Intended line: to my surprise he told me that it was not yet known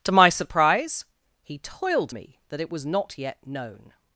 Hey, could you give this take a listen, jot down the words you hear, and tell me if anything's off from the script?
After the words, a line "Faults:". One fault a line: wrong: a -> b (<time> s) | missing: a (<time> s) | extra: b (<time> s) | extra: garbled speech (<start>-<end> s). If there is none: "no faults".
to my surprise he toiled me that it was not yet known
Faults:
wrong: told -> toiled (1.6 s)